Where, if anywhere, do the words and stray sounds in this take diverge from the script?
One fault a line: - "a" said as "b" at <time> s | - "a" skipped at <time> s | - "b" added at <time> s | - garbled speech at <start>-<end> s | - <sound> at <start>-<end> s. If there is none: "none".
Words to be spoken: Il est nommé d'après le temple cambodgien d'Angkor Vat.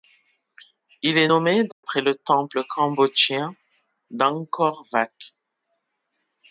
- dropout at 1.7-1.8 s